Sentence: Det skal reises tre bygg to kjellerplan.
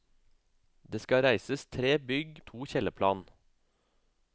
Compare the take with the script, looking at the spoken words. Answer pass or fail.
pass